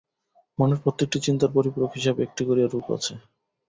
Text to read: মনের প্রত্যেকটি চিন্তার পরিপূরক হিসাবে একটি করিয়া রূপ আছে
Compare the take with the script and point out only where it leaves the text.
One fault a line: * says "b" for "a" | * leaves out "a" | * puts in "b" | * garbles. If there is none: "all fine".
all fine